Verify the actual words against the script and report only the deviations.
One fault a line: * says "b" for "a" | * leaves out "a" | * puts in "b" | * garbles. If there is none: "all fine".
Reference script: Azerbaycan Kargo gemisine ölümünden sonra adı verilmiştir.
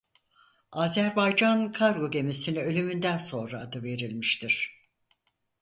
all fine